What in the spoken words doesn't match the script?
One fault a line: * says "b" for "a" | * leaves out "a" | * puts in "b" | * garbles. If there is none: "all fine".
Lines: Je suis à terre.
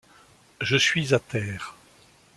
all fine